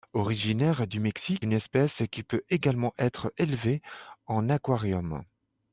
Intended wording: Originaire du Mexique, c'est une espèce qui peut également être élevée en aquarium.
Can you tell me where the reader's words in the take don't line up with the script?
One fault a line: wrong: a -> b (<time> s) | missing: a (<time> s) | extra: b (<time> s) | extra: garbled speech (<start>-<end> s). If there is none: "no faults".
missing: c'est (1.4 s)